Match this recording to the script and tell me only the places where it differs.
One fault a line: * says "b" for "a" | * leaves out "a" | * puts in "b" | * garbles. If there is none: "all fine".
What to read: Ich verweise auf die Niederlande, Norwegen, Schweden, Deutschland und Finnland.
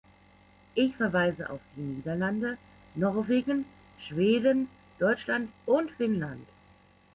all fine